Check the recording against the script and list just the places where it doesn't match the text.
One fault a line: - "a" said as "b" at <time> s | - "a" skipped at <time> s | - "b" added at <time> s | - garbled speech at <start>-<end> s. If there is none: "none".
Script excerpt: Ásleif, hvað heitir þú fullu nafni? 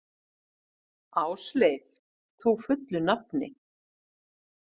- "hvað heitir" skipped at 1.8 s